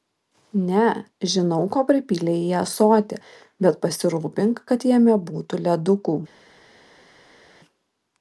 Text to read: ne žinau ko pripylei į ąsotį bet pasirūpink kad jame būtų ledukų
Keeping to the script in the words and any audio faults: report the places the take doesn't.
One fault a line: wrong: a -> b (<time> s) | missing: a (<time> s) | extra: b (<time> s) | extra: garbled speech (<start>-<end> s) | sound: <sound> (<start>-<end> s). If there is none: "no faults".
no faults